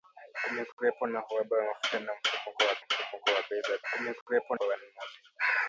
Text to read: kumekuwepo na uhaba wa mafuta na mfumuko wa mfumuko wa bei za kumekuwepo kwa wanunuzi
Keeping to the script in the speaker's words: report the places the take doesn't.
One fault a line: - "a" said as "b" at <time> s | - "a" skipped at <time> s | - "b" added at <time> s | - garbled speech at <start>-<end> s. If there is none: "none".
none